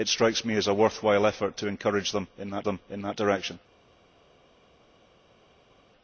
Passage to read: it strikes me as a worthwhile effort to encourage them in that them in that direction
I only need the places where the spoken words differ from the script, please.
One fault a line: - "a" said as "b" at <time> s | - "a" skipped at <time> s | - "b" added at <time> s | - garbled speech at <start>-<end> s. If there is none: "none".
none